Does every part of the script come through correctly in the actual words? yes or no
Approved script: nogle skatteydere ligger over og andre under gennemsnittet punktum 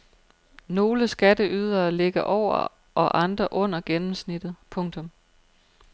yes